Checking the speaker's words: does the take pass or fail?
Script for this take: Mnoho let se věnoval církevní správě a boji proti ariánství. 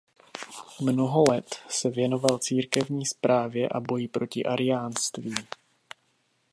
pass